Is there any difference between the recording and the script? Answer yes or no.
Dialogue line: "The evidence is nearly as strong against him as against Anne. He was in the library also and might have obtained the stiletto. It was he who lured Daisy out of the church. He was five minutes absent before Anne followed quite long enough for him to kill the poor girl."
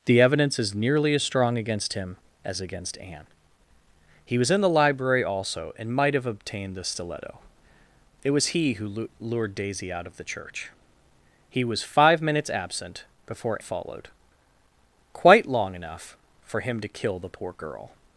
yes